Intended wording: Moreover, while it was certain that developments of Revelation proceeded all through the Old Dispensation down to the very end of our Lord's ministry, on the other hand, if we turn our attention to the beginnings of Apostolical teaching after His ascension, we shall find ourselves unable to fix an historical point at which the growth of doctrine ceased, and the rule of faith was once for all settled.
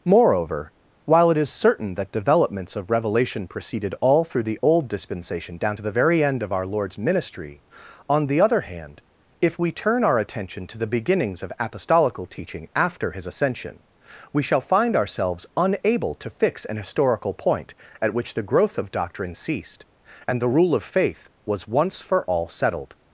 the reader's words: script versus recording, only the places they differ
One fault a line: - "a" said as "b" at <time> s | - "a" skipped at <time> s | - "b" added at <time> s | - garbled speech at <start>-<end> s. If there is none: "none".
- "was" said as "is" at 1.4 s